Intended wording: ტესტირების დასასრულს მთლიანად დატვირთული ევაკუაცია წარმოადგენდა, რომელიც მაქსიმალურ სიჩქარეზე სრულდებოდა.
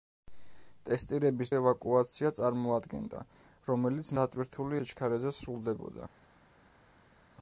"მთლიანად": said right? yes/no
no